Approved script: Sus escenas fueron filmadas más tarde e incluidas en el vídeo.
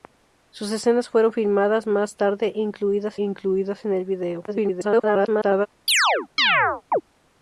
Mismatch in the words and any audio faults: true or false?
true